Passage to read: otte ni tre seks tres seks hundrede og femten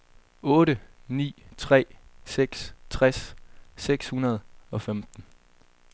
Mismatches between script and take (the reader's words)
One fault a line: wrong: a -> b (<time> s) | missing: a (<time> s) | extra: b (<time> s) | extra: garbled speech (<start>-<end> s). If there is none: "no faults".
no faults